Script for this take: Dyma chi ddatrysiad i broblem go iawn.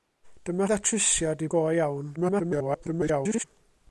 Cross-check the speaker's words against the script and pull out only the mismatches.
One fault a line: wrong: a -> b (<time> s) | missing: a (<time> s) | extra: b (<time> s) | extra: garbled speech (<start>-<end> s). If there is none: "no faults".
missing: chi (0.7 s)
missing: broblem (1.5 s)
extra: garbled speech (2.2-3.4 s)